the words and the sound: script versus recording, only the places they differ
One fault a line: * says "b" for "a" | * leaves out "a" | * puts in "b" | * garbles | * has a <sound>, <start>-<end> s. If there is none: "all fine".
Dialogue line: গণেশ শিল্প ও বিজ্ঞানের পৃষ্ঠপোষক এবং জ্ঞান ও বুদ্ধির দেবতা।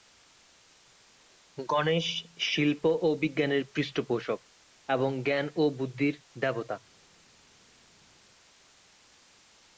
all fine